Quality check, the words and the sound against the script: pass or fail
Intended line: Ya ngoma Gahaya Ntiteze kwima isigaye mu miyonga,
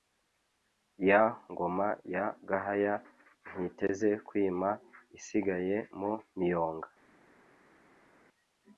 fail